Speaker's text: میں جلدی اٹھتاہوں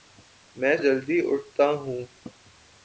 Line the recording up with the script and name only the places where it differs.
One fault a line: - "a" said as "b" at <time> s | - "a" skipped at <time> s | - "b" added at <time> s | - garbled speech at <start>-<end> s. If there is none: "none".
none